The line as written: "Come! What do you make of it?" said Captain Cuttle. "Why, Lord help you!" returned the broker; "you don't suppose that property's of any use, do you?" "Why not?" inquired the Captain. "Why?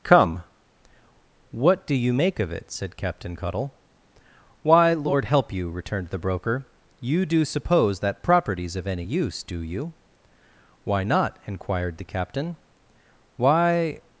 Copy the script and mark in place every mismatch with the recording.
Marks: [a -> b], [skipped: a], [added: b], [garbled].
"Come! What do you make of it?" said Captain Cuttle. "Why, Lord help you!" returned the broker; "you [don't -> do] suppose that property's of any use, do you?" "Why not?" inquired the Captain. "Why?